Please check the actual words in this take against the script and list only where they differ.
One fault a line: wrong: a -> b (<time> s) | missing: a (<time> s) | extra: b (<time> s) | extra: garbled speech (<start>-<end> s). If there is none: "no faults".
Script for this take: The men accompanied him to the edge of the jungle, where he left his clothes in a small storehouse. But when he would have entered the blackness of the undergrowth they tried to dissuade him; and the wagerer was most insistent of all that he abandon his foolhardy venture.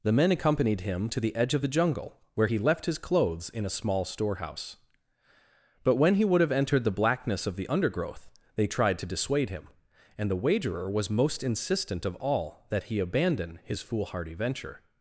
no faults